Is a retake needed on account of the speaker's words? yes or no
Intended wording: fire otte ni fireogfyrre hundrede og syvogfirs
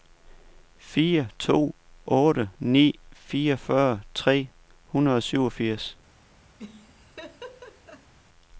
yes